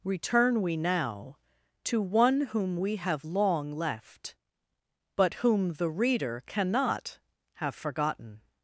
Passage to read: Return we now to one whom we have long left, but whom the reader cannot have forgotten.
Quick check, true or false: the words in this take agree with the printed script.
true